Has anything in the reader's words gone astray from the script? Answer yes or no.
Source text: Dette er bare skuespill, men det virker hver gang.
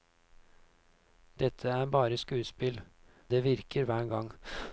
yes